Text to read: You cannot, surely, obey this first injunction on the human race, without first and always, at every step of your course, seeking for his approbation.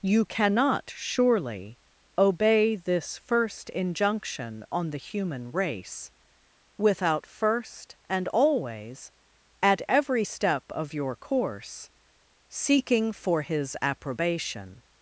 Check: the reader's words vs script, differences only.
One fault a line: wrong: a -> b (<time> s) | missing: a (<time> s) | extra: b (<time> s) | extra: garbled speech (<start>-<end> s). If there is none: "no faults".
no faults